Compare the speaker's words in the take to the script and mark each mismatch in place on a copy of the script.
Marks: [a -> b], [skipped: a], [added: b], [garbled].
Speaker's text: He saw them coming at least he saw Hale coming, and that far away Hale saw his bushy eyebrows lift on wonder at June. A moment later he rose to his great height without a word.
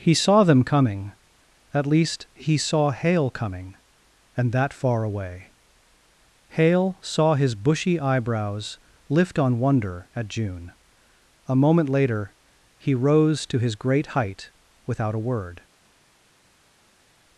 He saw them coming at least he saw Hale coming, and that far away Hale saw his bushy eyebrows lift on wonder at June. A moment later he rose to his great height without a word.